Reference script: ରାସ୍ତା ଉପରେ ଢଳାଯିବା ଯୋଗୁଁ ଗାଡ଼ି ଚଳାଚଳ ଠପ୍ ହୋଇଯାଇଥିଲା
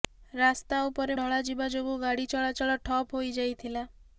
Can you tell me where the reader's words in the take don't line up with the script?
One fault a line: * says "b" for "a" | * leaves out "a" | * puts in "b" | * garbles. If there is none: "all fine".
all fine